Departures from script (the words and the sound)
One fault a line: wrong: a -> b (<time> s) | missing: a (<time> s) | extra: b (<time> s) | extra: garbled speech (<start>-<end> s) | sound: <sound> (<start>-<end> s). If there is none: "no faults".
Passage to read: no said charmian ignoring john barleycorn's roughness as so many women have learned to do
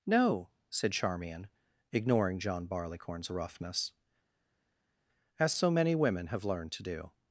no faults